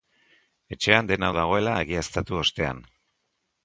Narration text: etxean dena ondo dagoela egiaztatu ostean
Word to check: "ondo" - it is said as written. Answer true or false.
false